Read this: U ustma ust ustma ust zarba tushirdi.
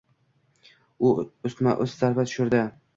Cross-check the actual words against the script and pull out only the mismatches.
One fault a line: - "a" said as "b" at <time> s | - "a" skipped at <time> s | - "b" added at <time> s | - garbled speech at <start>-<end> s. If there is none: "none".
- "ustma ust" skipped at 2.0 s